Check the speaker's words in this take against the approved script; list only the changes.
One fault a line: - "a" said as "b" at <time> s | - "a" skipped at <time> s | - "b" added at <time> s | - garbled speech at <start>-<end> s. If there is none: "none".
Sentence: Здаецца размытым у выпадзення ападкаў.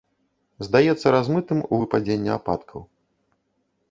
none